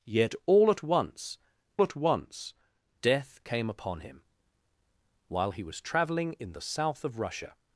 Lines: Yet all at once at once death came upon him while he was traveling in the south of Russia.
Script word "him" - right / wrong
right